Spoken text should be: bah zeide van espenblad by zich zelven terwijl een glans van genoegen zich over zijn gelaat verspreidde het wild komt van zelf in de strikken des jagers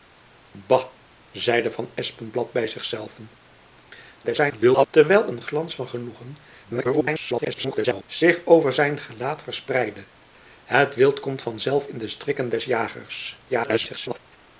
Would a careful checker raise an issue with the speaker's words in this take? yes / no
yes